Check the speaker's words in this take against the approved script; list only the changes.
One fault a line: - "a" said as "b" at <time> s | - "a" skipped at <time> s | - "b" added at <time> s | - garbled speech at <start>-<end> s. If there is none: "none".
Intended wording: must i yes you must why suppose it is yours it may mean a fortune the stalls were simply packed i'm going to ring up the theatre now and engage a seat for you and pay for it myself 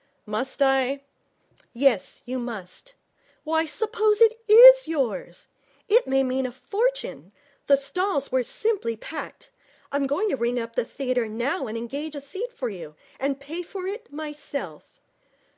none